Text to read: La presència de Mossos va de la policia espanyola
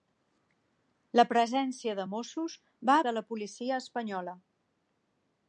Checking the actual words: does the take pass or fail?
pass